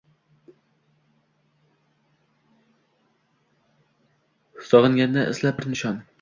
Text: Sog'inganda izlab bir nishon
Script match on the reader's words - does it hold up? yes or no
yes